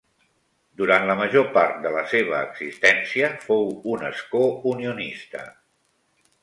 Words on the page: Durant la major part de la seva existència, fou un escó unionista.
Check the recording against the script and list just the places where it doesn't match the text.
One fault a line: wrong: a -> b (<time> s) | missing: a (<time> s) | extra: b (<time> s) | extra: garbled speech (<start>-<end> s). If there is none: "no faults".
no faults